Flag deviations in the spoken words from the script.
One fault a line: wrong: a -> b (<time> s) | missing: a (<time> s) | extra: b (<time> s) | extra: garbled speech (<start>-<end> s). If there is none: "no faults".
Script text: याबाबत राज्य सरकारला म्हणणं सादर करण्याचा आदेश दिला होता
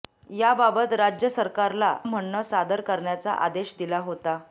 no faults